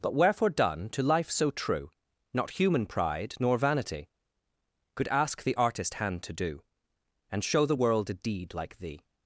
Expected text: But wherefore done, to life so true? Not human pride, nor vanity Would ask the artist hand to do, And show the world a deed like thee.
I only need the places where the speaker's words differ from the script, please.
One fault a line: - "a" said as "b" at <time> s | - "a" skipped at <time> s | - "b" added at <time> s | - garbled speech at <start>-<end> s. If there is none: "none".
- "Would" said as "Could" at 5.0 s